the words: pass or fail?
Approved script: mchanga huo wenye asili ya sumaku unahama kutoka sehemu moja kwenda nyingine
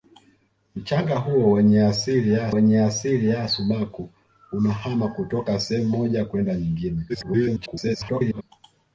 fail